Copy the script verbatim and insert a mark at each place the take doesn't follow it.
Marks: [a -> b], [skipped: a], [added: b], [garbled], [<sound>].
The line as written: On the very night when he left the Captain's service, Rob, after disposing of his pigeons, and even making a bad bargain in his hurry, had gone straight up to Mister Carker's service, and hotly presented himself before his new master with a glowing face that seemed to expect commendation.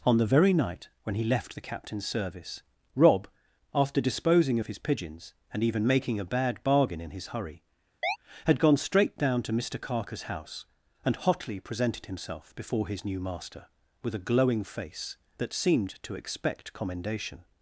On the very night when he left the Captain's service, Rob, after disposing of his pigeons, and even making a bad bargain in his hurry, [chirp] had gone straight [up -> down] to Mister Carker's [service, -> house] and hotly presented himself before his new master with a glowing face that seemed to expect commendation.